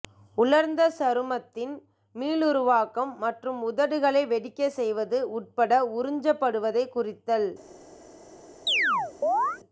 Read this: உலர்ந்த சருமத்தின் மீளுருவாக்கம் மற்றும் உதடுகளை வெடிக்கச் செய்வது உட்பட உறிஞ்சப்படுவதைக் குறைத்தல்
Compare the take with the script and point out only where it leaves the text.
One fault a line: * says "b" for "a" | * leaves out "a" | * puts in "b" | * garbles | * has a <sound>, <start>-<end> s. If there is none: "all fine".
* has a chirp, 8.7-9.6 s